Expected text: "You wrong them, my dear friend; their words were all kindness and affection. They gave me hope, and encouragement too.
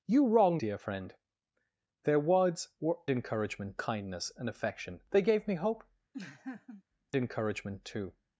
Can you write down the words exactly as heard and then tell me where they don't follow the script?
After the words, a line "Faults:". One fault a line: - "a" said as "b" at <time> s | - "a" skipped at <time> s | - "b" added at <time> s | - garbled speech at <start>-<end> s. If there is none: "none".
"You wrong dear friend; their words were encouragement kindness and affection. They gave me hope, encouragement too.
Faults:
- "them my" skipped at 0.6 s
- "all" said as "encouragement" at 3.1 s
- "and" skipped at 5.8 s